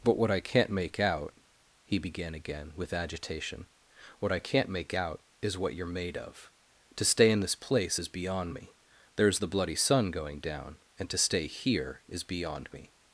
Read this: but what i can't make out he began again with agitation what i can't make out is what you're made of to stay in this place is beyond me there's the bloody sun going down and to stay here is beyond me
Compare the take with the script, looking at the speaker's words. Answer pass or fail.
pass